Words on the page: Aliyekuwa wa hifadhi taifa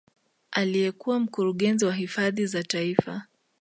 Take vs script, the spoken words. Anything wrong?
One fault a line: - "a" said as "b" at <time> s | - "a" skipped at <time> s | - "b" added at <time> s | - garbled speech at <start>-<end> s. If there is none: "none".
- "mkurugenzi" added at 1.2 s
- "za" added at 2.5 s